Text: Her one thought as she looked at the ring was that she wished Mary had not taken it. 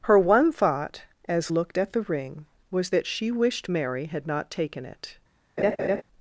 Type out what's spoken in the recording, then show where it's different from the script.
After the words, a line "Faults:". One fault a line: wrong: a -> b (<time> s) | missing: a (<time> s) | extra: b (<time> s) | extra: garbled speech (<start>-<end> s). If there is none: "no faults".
Her one thought as looked at the ring was that she wished Mary had not taken it.
Faults:
missing: she (1.5 s)